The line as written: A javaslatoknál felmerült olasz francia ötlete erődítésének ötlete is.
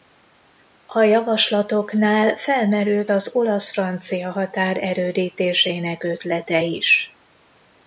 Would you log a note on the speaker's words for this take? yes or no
yes